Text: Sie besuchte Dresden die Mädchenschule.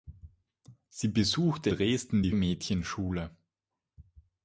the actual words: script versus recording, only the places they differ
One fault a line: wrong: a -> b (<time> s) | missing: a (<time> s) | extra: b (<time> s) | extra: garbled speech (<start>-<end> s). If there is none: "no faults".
no faults